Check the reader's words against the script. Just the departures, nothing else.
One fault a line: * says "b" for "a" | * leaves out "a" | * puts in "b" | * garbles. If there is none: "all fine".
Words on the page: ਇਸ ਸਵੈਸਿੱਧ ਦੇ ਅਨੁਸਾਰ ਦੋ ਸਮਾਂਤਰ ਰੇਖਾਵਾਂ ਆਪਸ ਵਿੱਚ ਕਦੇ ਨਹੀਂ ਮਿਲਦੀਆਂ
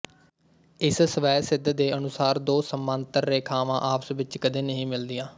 all fine